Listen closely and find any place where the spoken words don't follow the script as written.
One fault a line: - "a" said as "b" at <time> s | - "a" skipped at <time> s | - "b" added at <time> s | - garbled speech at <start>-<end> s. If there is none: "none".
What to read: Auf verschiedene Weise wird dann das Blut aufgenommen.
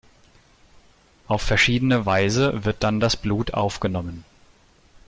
none